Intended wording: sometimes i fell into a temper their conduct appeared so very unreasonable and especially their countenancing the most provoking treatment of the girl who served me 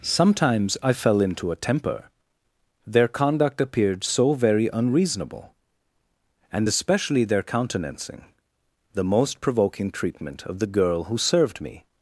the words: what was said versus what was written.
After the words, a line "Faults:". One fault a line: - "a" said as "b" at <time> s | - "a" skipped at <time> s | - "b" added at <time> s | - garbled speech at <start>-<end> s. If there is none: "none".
sometimes i fell into a temper their conduct appeared so very unreasonable and especially their countenancing the most provoking treatment of the girl who served me
Faults:
none